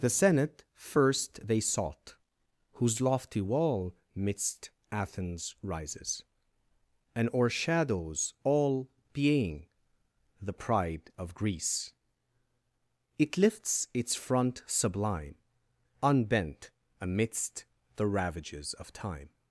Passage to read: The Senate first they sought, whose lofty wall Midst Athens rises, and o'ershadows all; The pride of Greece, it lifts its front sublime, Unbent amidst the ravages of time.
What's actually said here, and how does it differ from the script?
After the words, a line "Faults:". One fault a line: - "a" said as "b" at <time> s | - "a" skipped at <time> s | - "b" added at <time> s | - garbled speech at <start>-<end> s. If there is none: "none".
The Senate first they sought, whose lofty wall Midst Athens rises, and o'ershadows all; being The pride of Greece, it lifts its front sublime, Unbent amidst the ravages of time.
Faults:
- "being" added at 9.1 s